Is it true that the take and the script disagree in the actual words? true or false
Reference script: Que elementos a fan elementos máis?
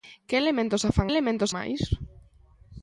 false